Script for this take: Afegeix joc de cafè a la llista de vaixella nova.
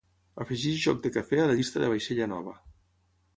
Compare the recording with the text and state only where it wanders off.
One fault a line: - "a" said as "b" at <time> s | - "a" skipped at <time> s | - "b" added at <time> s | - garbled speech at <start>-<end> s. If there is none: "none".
none